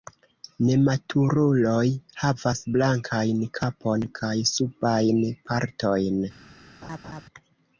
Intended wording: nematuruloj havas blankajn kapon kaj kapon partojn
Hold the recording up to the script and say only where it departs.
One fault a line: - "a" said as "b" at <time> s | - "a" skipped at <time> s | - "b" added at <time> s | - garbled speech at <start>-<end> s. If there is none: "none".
- "kapon" said as "subajn" at 4.5 s